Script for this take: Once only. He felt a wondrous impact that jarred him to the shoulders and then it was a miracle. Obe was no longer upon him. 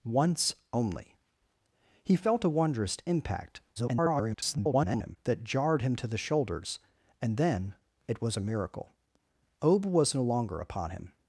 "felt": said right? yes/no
yes